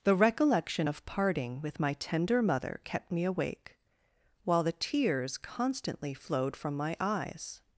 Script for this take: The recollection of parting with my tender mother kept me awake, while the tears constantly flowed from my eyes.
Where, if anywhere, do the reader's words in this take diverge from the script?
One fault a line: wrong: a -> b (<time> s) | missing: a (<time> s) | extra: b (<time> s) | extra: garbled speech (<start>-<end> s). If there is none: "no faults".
no faults